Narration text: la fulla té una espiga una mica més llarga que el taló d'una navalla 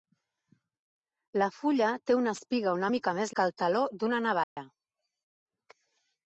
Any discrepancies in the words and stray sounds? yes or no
yes